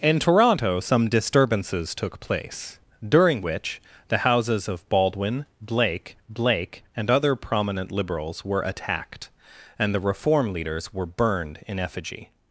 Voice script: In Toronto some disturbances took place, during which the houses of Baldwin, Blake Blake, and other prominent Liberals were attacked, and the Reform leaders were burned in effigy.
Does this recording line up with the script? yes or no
yes